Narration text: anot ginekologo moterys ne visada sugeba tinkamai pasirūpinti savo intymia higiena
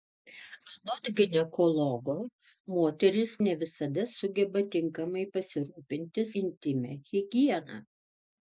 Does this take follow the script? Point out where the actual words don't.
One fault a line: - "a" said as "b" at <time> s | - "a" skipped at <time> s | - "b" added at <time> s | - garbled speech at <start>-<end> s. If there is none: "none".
- "savo" skipped at 6.3 s